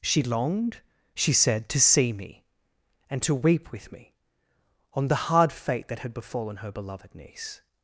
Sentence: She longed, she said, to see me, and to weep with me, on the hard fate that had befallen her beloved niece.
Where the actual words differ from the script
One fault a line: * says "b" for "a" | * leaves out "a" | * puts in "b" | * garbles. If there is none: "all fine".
all fine